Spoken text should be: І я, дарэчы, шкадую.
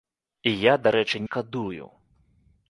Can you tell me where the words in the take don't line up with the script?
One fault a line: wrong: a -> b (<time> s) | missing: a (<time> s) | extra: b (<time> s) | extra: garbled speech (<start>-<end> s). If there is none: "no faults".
no faults